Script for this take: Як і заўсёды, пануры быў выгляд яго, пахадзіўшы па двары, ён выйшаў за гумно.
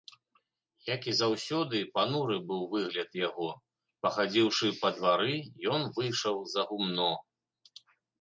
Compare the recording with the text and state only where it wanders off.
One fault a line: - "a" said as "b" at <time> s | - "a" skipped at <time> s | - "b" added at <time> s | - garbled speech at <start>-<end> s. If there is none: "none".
none